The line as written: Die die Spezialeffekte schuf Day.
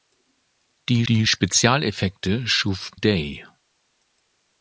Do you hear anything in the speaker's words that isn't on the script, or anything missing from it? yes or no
no